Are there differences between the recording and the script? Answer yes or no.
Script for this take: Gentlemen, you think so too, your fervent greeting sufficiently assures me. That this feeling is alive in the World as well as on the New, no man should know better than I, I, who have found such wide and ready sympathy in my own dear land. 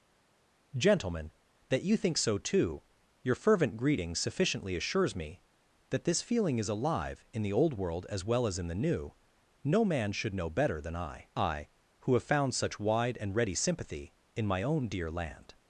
yes